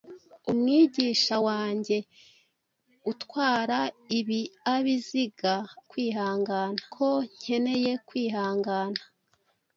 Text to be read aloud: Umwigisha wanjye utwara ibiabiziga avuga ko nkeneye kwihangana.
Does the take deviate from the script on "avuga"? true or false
true